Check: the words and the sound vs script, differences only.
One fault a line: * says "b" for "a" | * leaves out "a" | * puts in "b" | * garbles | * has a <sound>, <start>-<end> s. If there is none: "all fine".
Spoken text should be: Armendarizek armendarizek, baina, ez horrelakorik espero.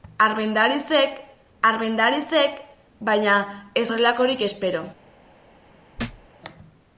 * has a thud, 6.0-6.3 s